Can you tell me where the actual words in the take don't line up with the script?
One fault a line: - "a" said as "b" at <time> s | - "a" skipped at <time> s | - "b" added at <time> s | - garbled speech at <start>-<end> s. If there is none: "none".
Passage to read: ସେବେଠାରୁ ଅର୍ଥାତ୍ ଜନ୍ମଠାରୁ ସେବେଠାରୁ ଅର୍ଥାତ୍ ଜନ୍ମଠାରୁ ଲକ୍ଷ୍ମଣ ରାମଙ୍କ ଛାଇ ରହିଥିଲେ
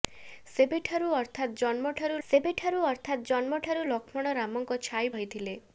none